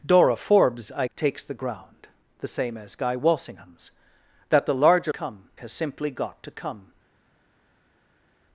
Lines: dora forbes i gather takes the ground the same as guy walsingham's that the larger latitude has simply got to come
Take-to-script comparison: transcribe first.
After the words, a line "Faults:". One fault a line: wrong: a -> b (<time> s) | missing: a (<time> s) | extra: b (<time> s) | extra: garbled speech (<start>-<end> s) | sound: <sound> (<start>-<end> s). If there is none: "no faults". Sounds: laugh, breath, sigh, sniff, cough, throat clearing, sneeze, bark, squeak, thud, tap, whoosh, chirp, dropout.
dora forbes i takes the ground the same as guy walsingham's that the larger come has simply got to come
Faults:
missing: gather (1.1 s)
wrong: latitude -> come (5.1 s)